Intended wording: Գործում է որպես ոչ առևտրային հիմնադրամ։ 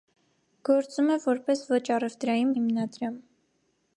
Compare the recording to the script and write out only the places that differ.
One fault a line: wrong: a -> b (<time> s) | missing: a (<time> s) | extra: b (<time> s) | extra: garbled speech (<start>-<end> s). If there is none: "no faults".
no faults